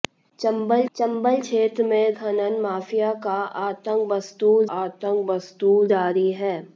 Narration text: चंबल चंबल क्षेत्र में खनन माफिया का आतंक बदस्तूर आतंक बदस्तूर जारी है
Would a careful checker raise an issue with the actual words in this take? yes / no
no